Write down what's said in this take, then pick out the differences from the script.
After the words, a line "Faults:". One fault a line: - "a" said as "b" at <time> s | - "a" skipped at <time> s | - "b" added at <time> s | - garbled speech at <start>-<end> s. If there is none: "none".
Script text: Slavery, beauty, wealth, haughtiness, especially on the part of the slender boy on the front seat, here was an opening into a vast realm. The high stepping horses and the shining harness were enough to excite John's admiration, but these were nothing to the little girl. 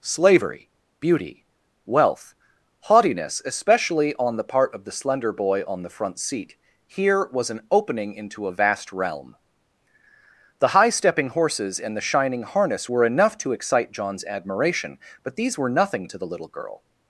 Slavery, beauty, wealth, haughtiness, especially on the part of the slender boy on the front seat, here was an opening into a vast realm. The high stepping horses and the shining harness were enough to excite John's admiration, but these were nothing to the little girl.
Faults:
none